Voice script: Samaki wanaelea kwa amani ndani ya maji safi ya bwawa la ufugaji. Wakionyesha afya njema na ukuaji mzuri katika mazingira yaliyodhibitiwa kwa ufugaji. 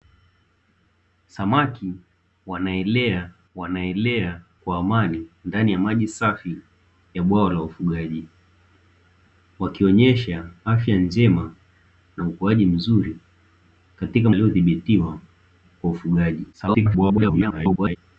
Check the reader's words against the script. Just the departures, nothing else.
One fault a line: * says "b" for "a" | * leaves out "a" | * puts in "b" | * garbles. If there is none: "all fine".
* puts in "wanaelea"
* leaves out "mazingira"
* garbles